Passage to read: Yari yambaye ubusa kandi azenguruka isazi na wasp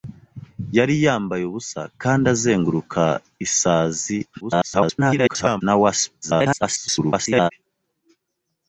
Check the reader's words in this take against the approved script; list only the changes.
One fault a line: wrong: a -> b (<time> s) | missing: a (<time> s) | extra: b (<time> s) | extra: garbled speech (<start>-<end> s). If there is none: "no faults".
extra: garbled speech (4.4-5.6 s)
extra: garbled speech (6.2-7.5 s)